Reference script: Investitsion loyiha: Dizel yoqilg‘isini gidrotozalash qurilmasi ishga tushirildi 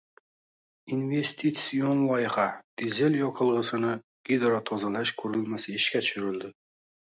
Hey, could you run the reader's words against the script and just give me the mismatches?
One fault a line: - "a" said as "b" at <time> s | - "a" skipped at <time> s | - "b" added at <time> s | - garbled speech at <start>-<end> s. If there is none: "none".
none